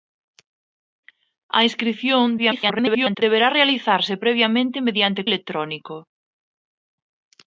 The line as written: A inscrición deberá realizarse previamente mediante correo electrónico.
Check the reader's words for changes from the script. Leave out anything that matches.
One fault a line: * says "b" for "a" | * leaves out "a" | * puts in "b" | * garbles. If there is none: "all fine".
* garbles
* leaves out "correo"